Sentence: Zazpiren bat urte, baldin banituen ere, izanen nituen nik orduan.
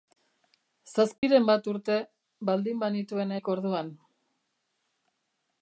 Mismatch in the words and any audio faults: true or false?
true